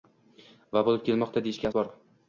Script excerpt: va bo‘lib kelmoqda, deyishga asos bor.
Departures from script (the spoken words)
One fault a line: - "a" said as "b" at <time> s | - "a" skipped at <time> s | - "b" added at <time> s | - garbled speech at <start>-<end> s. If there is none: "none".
- "asos" skipped at 1.7 s